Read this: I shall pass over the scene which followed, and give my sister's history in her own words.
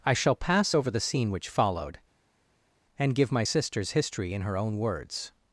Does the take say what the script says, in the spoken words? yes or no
yes